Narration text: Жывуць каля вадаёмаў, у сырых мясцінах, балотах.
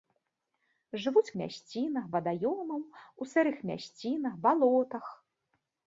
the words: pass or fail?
fail